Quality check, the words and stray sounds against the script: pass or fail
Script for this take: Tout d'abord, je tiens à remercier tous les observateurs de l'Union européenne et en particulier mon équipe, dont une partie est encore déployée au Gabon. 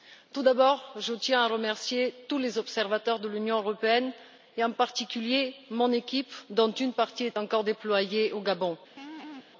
fail